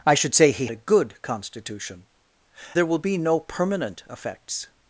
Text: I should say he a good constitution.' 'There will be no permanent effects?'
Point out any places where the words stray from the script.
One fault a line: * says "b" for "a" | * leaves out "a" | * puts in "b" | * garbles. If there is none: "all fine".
all fine